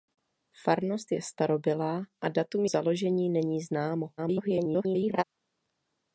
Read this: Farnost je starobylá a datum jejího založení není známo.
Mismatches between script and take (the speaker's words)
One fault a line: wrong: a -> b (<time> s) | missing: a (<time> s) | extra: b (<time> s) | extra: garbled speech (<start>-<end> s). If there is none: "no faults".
missing: jejího (2.6 s)
extra: garbled speech (4.2-5.2 s)